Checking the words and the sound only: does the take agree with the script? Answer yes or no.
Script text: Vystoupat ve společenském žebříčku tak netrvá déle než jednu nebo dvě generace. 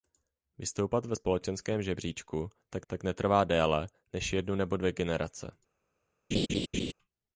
no